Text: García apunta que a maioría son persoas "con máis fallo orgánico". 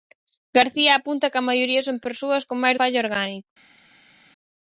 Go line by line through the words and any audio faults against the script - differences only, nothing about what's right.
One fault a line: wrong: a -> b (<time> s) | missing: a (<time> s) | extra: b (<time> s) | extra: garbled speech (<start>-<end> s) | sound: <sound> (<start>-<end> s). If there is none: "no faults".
no faults